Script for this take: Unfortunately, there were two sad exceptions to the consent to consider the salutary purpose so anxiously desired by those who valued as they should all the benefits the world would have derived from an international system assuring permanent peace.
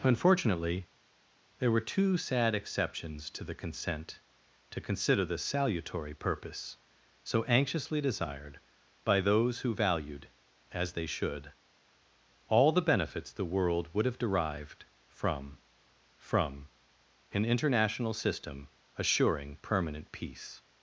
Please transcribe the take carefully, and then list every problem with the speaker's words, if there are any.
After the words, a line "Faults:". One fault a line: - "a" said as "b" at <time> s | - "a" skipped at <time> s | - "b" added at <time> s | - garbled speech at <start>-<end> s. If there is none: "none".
Unfortunately, there were two sad exceptions to the consent to consider the salutary purpose so anxiously desired by those who valued as they should all the benefits the world would have derived from from an international system assuring permanent peace.
Faults:
- "from" added at 16.2 s